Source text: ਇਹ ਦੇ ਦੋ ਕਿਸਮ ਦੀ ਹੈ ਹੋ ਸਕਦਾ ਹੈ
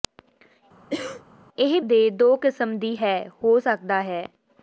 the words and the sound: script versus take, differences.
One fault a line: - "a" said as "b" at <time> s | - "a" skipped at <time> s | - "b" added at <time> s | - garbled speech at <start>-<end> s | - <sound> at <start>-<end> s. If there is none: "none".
- cough at 0.9-1.2 s